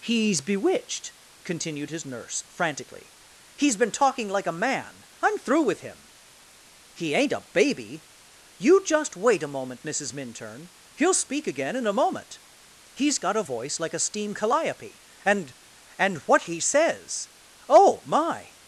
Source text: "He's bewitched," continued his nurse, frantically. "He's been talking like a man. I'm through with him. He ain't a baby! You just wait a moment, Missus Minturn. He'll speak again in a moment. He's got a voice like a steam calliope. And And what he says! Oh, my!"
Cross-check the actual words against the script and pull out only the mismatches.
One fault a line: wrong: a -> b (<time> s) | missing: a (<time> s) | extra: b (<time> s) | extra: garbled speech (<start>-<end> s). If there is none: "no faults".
no faults